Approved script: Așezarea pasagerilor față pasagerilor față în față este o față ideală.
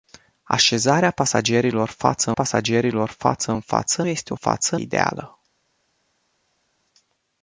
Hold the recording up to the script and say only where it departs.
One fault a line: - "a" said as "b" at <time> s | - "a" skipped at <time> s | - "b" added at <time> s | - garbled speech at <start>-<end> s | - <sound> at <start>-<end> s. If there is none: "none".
none